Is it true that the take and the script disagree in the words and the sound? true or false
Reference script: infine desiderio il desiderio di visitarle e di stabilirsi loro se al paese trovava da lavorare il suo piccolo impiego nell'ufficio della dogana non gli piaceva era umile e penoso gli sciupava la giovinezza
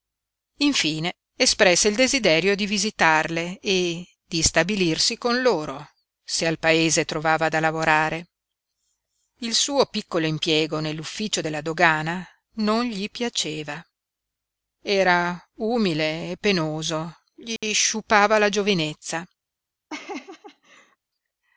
true